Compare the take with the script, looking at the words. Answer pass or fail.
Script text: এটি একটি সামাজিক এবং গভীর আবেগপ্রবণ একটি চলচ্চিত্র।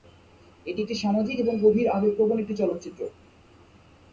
pass